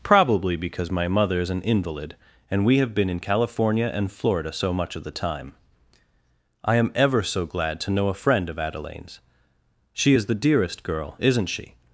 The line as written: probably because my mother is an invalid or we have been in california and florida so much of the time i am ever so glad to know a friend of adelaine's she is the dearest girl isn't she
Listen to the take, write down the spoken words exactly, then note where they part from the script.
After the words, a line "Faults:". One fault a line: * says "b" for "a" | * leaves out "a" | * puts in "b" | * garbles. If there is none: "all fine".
probably because my mother is an invalid and we have been in california and florida so much of the time i am ever so glad to know a friend of adelaine's she is the dearest girl isn't she
Faults:
* says "and" for "or"